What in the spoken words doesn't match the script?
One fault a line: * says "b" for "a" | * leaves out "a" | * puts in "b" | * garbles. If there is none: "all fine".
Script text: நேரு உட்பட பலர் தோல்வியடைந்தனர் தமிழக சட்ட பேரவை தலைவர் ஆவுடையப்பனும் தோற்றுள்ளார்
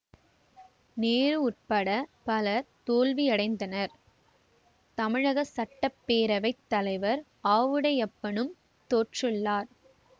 all fine